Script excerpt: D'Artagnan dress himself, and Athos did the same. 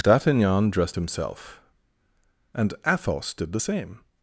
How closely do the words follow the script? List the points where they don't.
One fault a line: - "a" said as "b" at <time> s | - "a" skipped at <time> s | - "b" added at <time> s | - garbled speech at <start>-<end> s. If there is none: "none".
- "dress" said as "dressed" at 0.7 s